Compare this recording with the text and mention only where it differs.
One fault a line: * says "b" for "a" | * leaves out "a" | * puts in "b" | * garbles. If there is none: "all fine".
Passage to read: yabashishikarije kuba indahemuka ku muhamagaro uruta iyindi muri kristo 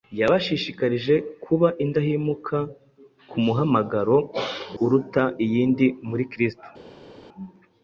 all fine